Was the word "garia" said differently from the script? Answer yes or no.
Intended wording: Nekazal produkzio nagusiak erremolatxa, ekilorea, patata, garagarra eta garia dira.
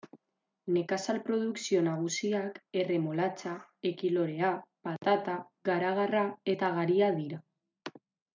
no